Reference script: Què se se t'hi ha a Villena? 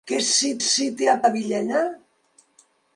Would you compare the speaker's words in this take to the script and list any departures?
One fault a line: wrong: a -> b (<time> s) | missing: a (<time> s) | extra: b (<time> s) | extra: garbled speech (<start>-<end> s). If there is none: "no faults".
no faults